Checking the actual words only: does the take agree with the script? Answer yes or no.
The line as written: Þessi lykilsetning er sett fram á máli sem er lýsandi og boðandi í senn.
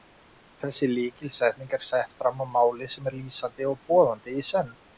yes